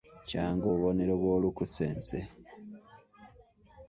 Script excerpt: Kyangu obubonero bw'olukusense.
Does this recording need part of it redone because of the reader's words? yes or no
no